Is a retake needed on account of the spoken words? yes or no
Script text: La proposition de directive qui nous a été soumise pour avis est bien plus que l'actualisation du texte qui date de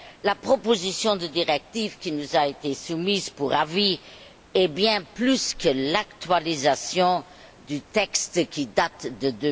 no